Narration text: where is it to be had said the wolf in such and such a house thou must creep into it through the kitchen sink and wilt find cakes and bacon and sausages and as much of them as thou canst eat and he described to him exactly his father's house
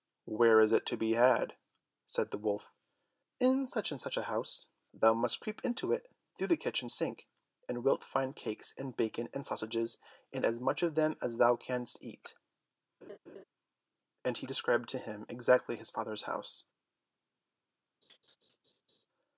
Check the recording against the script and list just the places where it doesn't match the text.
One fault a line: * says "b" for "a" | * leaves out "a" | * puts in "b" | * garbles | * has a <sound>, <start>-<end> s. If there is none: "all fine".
* has a laugh, 13.0-13.4 s
* has a laugh, 18.0-19.1 s